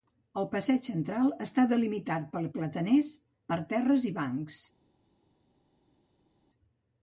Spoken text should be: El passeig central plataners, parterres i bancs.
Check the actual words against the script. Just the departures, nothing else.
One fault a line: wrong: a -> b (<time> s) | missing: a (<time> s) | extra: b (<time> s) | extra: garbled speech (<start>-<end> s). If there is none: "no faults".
extra: està delimitat per (1.4 s)